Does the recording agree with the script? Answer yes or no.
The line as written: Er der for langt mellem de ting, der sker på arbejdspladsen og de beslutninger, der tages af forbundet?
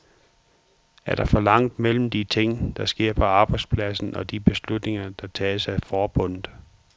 yes